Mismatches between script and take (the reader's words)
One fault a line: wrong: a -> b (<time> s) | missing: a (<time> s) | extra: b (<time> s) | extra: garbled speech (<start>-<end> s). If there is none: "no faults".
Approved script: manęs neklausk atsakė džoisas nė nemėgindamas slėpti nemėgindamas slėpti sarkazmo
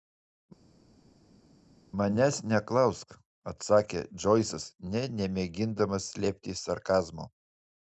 missing: nemėgindamas slėpti (6.6 s)